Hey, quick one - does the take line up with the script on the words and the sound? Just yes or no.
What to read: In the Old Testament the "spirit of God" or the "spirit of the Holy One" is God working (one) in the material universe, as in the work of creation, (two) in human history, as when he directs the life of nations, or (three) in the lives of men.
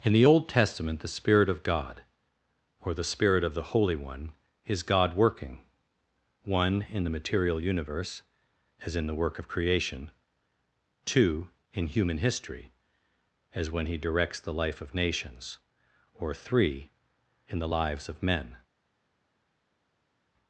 yes